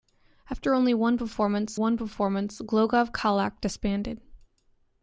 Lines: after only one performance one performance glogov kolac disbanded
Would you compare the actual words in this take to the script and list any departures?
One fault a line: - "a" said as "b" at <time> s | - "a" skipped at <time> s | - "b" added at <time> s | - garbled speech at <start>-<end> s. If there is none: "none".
none